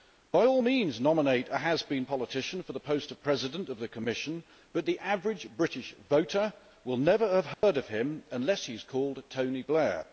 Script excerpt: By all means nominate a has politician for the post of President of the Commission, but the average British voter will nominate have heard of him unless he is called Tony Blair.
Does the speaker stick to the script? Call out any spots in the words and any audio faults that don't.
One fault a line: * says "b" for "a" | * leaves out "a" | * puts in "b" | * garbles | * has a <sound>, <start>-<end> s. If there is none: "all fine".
* puts in "been"
* says "never" for "nominate"
* has a dropout, 7.5-7.6 s